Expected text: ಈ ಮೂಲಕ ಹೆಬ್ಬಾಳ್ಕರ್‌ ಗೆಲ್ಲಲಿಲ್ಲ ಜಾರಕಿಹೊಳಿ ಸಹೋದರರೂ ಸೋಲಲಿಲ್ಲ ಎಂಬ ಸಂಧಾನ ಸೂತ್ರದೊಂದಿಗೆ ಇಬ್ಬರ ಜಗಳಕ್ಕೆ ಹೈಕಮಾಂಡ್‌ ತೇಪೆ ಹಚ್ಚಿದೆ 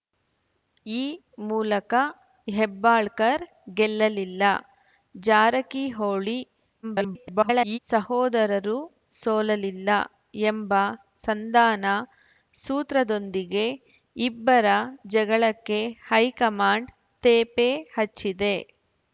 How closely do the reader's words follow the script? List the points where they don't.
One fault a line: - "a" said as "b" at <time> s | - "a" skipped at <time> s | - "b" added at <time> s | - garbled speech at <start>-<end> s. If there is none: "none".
- garbled speech at 6.8-7.8 s